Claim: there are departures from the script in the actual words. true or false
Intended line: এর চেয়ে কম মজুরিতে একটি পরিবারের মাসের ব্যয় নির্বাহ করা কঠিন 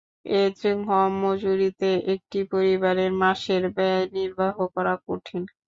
false